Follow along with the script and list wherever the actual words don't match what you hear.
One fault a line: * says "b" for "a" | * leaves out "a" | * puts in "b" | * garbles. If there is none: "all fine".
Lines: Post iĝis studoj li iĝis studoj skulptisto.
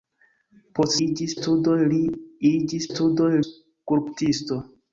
all fine